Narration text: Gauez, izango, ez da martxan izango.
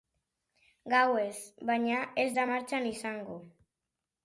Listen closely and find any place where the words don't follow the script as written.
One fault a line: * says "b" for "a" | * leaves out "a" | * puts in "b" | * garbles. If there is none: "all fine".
* says "baina" for "izango"